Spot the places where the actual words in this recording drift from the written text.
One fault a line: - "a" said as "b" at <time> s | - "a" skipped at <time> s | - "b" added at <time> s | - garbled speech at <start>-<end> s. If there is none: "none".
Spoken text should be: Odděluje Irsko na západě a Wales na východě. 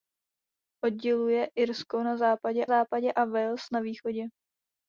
- "západě" added at 2.7 s